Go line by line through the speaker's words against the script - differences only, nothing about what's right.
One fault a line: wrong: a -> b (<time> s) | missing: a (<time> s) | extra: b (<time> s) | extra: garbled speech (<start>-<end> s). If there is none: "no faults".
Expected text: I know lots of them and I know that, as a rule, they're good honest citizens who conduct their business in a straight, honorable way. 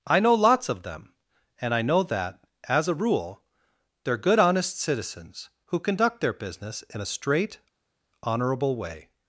no faults